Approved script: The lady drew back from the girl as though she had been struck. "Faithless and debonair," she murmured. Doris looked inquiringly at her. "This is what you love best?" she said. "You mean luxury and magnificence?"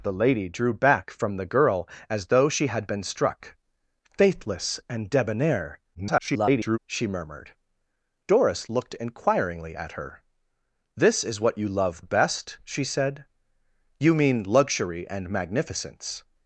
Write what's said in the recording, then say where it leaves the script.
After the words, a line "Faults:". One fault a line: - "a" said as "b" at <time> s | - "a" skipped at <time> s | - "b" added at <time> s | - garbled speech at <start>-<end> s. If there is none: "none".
The lady drew back from the girl as though she had been struck. "Faithless and debonair," [garbled] she murmured. Doris looked inquiringly at her. "This is what you love best?" she said. "You mean luxury and magnificence?"
Faults:
- garbled speech at 5.9-6.8 s